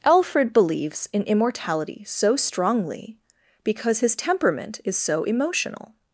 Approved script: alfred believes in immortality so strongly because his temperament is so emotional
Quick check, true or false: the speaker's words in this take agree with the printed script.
true